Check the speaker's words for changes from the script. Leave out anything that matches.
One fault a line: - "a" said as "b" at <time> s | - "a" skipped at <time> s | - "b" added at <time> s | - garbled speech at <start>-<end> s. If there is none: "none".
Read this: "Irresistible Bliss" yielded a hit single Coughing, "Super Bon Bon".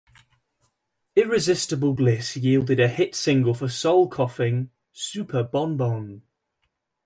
- "for Soul" added at 3.5 s